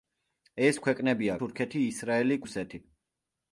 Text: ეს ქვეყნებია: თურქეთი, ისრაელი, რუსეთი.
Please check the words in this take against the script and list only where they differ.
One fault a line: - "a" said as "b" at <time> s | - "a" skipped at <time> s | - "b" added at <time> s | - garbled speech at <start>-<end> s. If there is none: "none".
none